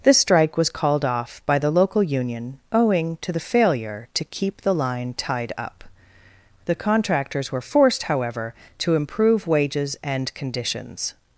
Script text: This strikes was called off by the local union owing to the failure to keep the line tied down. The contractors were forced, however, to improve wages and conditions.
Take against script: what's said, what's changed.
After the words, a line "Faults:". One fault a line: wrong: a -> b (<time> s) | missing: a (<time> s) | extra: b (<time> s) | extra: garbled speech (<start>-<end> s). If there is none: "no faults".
This strike was called off by the local union owing to the failure to keep the line tied up. The contractors were forced, however, to improve wages and conditions.
Faults:
wrong: strikes -> strike (0.2 s)
wrong: down -> up (5.6 s)